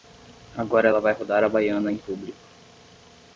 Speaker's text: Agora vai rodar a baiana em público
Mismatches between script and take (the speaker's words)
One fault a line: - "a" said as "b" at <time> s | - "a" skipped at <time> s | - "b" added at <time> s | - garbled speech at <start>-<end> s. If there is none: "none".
- "ela" added at 0.9 s